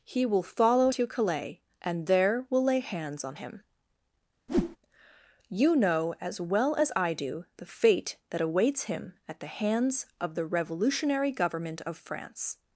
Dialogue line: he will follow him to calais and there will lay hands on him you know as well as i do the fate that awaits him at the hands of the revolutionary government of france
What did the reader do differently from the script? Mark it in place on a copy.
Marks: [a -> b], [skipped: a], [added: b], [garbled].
he will follow [skipped: him] to calais and there will lay hands on him you know as well as i do the fate that awaits him at the hands of the revolutionary government of france